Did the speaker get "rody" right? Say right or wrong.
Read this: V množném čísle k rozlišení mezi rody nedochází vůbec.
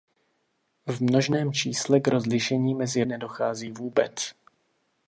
wrong